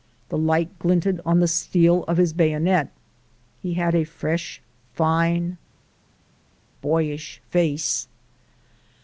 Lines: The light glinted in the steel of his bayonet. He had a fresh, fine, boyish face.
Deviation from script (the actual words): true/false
true